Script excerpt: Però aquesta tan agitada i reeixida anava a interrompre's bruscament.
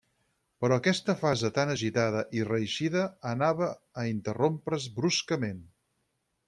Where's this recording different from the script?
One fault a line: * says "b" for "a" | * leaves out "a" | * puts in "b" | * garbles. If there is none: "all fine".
* puts in "fase"